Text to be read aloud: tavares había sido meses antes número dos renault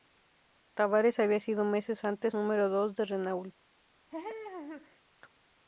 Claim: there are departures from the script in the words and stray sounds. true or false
true